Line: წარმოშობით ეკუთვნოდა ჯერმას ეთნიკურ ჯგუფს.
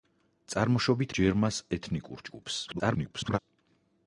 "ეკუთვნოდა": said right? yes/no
no